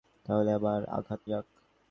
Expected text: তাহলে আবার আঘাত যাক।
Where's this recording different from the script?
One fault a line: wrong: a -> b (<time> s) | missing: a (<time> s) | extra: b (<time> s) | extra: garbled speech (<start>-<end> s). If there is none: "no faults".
no faults